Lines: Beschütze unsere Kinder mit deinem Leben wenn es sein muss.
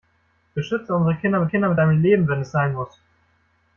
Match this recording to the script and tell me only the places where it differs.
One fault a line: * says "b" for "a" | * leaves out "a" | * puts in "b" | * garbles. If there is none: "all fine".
* puts in "Kinder mit"